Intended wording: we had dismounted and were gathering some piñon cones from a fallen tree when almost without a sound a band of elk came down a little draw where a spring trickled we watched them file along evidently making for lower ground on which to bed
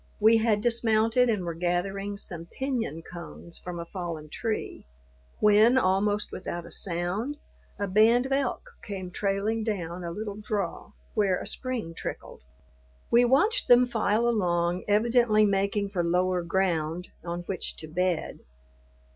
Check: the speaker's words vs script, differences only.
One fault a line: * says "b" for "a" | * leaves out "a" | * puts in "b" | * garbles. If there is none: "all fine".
* puts in "trailing"